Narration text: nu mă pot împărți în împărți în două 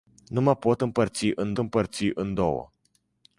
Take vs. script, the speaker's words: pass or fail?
pass